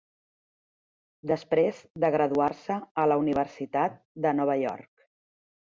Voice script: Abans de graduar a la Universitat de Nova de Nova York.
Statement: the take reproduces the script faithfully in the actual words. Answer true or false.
false